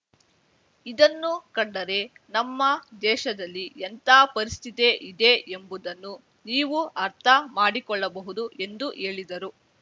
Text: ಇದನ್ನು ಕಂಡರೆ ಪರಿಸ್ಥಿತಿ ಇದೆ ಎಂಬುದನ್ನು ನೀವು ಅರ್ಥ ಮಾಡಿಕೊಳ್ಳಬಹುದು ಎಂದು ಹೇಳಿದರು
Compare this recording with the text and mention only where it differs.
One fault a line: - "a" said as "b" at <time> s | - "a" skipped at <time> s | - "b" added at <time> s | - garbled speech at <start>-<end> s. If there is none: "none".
- "ನಮ್ಮ ದೇಶದಲ್ಲಿ ಎಂಥ" added at 2.3 s